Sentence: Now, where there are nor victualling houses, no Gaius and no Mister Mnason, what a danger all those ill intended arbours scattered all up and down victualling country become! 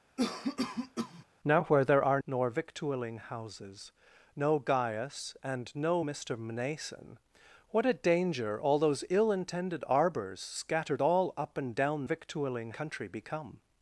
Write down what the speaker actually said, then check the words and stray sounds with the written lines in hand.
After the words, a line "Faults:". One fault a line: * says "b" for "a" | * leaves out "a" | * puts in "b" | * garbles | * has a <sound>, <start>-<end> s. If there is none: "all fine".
Now, where there are nor victualling houses, no Gaius and no Mister Mnason, what a danger all those ill intended arbours scattered all up and down victualling country become!
Faults:
* has a cough, 0.2-1.2 s